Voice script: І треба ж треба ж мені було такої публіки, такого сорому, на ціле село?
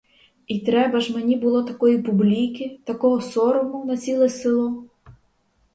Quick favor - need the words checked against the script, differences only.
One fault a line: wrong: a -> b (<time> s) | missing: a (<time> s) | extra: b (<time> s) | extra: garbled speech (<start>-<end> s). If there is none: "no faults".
missing: треба ж (1.1 s)